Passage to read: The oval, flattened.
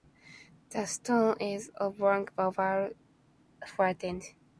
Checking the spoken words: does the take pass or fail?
fail